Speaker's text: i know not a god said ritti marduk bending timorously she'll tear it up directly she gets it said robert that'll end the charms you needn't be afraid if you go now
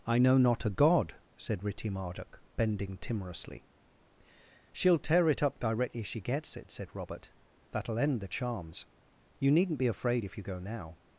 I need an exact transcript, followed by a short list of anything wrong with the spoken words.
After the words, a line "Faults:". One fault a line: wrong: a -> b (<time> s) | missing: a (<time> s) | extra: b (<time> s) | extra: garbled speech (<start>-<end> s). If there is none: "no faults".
i know not a god said ritti marduk bending timorously she'll tear it up directly she gets it said robert that'll end the charms you needn't be afraid if you go now
Faults:
no faults